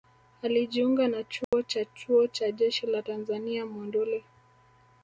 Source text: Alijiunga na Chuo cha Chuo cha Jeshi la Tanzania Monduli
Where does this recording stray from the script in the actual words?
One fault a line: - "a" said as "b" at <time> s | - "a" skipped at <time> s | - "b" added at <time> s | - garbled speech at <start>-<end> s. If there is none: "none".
none